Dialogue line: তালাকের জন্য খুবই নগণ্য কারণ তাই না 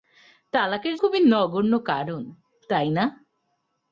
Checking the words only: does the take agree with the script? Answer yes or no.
no